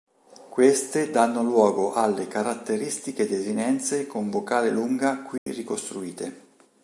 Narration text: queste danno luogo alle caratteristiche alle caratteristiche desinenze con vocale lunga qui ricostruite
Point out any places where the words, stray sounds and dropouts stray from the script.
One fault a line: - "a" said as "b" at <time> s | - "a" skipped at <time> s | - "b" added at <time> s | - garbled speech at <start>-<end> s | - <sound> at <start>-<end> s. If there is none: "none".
- "alle caratteristiche" skipped at 3.3 s
- dropout at 5.4-5.5 s